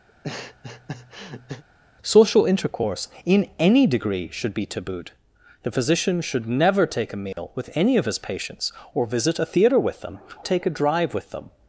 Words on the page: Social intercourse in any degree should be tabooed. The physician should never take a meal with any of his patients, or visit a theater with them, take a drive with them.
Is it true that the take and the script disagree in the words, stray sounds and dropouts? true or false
true